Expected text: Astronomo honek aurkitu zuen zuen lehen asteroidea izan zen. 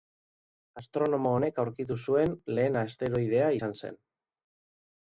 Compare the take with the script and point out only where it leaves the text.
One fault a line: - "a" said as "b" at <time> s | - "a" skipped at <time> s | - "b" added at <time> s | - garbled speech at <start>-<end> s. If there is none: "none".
- "zuen" skipped at 2.4 s